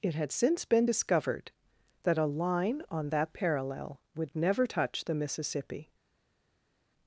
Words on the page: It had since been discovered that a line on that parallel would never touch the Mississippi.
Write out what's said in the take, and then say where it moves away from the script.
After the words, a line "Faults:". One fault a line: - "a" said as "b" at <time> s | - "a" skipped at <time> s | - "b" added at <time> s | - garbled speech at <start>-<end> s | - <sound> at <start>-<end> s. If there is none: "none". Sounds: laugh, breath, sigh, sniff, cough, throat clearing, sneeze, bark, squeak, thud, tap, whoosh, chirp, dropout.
It had since been discovered that a line on that parallel would never touch the Mississippi.
Faults:
none